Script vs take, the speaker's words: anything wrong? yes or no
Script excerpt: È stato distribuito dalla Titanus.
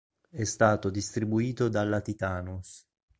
no